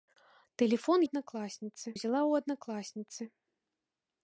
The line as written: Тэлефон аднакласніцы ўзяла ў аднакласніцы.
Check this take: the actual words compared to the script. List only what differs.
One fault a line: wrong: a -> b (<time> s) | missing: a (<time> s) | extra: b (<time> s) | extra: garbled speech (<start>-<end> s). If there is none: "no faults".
no faults